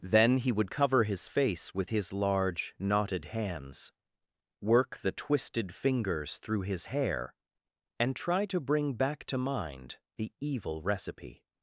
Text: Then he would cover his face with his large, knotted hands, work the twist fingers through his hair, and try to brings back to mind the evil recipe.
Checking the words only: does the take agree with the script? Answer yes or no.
no